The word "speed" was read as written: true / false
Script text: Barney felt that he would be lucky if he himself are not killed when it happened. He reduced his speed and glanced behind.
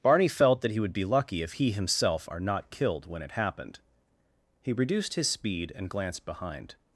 true